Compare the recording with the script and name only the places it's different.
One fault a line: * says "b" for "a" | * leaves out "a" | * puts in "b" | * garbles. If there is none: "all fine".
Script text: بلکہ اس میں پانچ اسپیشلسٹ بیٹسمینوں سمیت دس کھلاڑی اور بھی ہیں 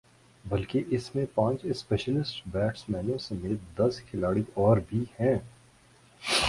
all fine